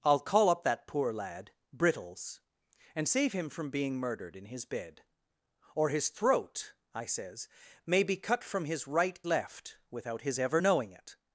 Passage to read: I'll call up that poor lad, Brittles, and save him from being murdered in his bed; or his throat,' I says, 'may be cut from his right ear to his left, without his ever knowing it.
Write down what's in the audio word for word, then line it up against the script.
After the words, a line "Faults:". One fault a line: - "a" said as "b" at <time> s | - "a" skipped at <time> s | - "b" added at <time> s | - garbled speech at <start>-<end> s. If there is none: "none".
I'll call up that poor lad, Brittles, and save him from being murdered in his bed; or his throat,' I says, 'may be cut from his right left, without his ever knowing it.
Faults:
- "ear to his" skipped at 9.2 s